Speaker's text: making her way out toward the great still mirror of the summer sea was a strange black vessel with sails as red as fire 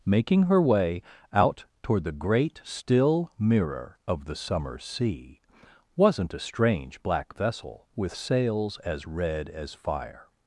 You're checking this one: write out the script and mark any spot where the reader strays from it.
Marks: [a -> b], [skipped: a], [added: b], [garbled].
making her way out toward the great still mirror of the summer sea [was -> wasn't] a strange black vessel with sails as red as fire